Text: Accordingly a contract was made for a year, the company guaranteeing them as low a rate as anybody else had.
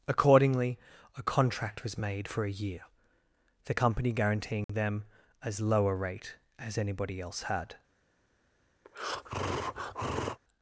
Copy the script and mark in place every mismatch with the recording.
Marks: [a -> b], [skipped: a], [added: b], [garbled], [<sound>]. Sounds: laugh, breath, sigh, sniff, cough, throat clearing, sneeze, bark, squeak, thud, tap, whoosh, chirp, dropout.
Accordingly a contract was made for a year, the company guaranteeing [dropout] them as low a rate as anybody else had. [breath]